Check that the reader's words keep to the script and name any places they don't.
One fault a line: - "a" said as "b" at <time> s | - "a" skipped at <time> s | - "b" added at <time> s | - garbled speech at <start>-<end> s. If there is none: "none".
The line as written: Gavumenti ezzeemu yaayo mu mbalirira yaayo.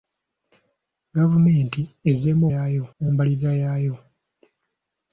none